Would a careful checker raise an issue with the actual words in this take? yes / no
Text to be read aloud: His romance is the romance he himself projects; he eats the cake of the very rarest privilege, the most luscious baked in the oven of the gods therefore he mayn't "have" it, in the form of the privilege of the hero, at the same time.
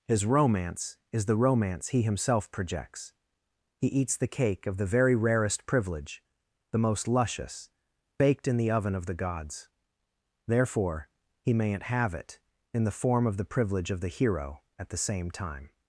no